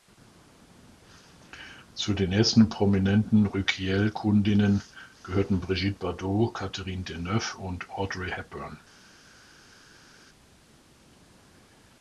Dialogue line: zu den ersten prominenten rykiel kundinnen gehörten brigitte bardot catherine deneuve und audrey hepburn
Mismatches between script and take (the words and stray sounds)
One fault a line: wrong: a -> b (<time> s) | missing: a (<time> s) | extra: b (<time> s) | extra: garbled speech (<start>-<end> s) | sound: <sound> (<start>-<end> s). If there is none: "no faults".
no faults